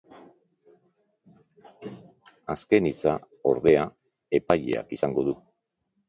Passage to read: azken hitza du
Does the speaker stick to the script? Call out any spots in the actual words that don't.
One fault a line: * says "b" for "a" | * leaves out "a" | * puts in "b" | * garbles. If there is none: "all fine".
* puts in "ordea epaileak izango"